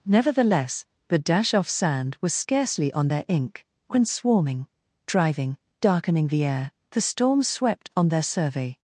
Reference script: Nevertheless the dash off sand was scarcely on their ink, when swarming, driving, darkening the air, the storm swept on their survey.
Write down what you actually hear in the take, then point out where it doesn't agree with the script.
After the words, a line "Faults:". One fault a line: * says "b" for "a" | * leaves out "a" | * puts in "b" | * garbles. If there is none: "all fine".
Nevertheless the dash off sand was scarcely on their ink, when swarming, driving, darkening the air, the storm swept on their survey.
Faults:
all fine